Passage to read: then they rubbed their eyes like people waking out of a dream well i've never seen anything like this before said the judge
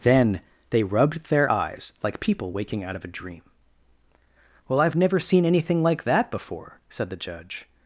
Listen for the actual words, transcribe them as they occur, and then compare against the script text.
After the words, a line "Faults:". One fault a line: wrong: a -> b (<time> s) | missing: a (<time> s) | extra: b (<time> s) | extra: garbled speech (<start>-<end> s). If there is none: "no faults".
then they rubbed their eyes like people waking out of a dream well i've never seen anything like that before said the judge
Faults:
wrong: this -> that (6.0 s)